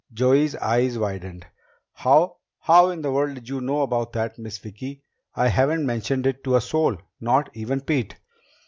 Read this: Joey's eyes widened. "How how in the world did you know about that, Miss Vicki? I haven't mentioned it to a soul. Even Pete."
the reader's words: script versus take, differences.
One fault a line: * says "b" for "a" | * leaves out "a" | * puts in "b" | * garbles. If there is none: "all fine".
* puts in "Not"